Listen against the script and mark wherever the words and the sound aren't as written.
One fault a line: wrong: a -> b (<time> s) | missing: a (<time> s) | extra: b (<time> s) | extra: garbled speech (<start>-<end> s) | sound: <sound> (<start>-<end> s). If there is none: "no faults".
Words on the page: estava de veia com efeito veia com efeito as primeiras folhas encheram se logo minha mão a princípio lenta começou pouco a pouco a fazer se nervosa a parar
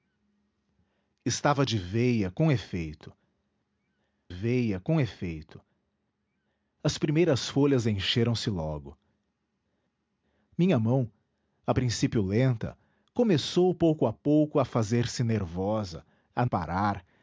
no faults